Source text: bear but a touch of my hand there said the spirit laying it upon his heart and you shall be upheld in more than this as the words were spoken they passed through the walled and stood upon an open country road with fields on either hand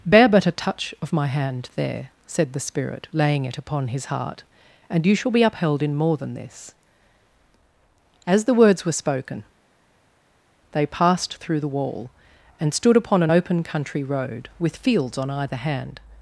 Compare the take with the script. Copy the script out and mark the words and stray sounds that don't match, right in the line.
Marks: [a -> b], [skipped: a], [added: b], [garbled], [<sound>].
bear but a touch of my hand there said the spirit laying it upon his heart and you shall be upheld in more than this as the words were spoken they passed through the [walled -> wall] and stood upon an open country road with fields on either hand